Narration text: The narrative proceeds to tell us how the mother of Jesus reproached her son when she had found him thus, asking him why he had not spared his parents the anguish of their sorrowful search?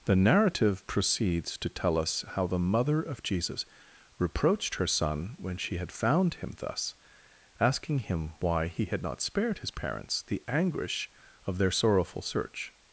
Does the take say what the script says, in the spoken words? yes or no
yes